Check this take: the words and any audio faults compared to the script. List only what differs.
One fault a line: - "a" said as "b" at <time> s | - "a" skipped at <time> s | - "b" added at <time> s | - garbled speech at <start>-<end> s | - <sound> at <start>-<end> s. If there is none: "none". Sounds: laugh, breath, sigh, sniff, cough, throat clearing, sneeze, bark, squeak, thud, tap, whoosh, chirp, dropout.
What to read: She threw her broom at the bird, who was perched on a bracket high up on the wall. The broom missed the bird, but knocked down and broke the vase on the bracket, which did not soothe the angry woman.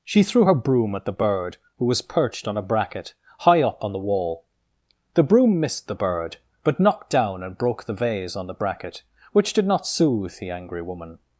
none